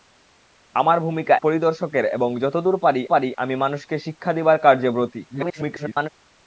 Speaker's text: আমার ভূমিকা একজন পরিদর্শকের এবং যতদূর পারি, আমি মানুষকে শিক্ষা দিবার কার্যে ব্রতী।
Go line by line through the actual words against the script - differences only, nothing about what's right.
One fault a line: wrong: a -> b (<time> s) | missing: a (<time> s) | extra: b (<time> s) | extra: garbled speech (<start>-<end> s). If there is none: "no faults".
missing: একজন (1.4 s)
extra: পারি (3.1 s)
extra: garbled speech (5.3-6.1 s)